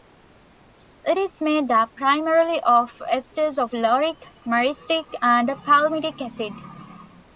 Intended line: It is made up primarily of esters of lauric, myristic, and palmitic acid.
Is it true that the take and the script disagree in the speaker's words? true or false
false